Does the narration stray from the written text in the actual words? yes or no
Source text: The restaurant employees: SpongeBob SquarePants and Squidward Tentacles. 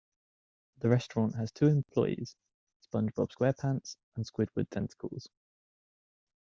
yes